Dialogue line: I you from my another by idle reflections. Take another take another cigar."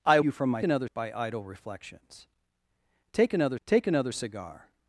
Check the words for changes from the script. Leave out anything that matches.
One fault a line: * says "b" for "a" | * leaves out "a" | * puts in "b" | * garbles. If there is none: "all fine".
all fine